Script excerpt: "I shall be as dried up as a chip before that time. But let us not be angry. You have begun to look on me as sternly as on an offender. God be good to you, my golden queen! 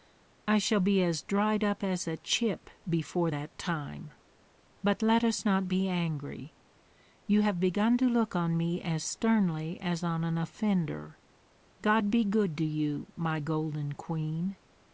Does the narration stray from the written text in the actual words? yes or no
no